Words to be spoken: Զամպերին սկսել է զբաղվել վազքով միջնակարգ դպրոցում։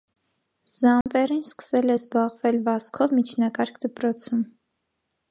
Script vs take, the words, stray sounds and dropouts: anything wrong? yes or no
yes